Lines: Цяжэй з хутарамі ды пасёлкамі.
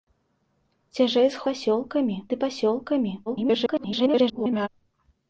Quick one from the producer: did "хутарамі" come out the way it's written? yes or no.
no